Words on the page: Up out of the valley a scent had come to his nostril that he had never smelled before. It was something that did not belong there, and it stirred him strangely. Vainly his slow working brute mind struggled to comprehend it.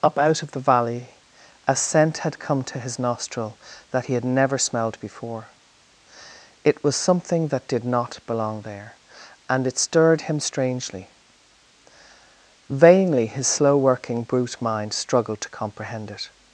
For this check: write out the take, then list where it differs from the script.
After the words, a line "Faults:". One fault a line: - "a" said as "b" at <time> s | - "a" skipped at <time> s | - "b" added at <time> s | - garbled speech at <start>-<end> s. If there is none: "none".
Up out of the valley a scent had come to his nostril that he had never smelled before. It was something that did not belong there, and it stirred him strangely. Vainly his slow working brute mind struggled to comprehend it.
Faults:
none